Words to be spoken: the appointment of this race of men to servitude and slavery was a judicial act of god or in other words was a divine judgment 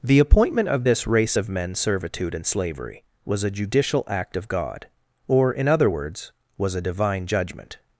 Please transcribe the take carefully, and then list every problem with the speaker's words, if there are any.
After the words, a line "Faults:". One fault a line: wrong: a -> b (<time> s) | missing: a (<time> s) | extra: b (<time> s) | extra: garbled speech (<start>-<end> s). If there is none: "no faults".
the appointment of this race of men servitude and slavery was a judicial act of god or in other words was a divine judgment
Faults:
missing: to (1.7 s)